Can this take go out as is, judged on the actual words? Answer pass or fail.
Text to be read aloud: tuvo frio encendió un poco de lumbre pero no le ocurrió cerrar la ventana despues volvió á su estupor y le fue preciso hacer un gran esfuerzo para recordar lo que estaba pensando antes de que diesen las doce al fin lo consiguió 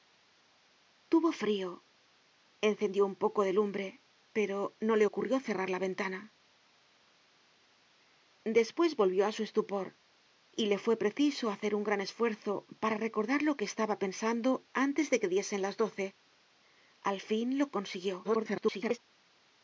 fail